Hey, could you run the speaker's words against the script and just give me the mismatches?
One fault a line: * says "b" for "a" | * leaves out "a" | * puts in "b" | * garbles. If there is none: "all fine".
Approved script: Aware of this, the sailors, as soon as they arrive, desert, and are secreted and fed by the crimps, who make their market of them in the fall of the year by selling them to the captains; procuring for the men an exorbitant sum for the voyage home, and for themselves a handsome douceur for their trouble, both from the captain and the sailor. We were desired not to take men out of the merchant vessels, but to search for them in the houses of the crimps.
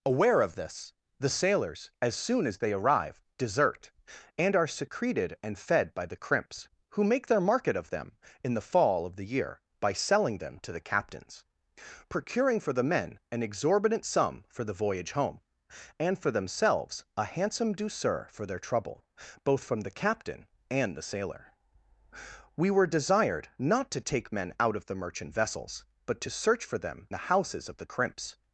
* leaves out "in"